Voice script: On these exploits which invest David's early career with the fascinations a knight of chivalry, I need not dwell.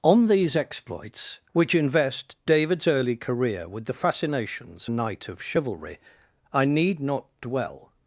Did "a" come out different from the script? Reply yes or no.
no